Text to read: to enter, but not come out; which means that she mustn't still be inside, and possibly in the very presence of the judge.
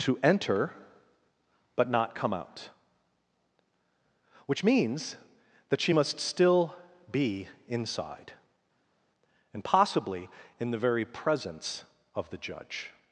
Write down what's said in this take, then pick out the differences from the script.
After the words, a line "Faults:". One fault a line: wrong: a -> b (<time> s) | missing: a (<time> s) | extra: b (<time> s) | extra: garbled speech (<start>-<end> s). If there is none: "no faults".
to enter, but not come out; which means that she must still be inside, and possibly in the very presence of the judge.
Faults:
wrong: mustn't -> must (5.9 s)